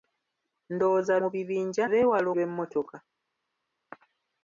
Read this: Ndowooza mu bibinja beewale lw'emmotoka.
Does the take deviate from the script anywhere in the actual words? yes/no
no